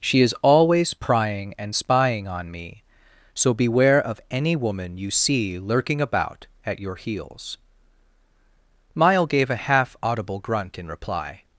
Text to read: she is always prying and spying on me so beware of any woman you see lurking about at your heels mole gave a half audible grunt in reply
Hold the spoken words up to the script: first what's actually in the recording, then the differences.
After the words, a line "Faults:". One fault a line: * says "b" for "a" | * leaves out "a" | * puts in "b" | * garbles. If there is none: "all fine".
she is always prying and spying on me so beware of any woman you see lurking about at your heels mile gave a half audible grunt in reply
Faults:
* says "mile" for "mole"